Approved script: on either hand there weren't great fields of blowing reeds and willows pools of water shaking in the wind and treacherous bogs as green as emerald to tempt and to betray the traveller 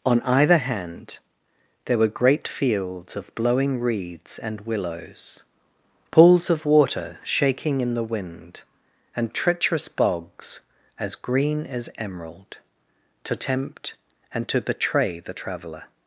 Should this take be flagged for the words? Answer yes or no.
yes